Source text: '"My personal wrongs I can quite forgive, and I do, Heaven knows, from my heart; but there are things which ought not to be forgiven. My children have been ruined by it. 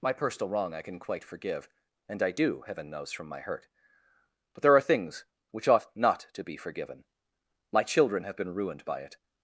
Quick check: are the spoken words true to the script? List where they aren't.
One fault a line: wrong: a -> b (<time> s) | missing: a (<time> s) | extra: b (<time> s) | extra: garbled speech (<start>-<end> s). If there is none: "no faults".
wrong: wrongs -> wrong (0.5 s)
wrong: heart -> hurt (3.4 s)